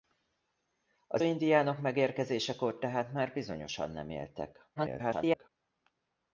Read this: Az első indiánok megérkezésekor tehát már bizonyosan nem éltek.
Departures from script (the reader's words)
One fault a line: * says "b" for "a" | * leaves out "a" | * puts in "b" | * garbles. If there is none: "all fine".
* leaves out "első"
* garbles